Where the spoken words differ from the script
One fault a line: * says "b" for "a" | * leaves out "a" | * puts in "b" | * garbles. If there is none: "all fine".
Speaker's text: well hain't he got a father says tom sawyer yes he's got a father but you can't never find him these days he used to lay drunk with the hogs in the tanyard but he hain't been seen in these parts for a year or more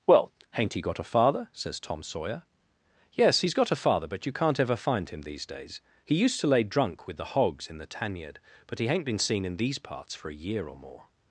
* says "ever" for "never"